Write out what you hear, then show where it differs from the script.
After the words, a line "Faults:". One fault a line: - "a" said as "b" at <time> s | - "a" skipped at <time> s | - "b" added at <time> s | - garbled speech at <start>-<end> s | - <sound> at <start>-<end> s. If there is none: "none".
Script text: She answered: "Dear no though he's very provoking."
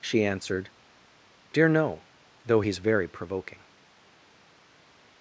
She answered: "Dear no though he's very provoking."
Faults:
none